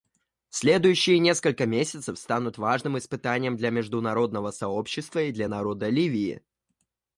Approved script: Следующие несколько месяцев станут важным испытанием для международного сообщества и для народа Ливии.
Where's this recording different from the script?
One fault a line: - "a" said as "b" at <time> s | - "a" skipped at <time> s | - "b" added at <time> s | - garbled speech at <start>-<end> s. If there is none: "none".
none